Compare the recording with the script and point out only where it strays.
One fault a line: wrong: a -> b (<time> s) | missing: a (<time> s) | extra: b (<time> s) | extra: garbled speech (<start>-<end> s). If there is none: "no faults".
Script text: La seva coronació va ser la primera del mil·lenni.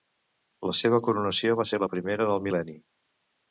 no faults